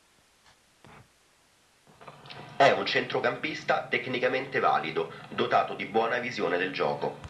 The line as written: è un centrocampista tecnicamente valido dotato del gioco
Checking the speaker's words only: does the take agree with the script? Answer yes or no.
no